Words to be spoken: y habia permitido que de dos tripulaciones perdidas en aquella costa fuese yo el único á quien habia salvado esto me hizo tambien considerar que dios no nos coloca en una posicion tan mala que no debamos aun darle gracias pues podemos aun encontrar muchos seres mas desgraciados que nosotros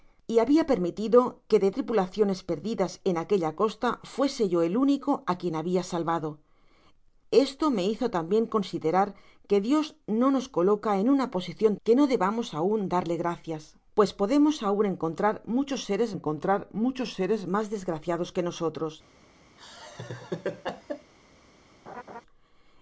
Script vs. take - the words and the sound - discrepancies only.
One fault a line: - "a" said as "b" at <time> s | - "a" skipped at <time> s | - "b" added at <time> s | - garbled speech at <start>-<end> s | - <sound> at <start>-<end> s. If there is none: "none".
- "dos" skipped at 1.7 s
- "tan mala" skipped at 11.7 s
- "encontrar muchos seres" added at 16.2 s
- laugh at 19.6-21.1 s
- laugh at 21.9-22.2 s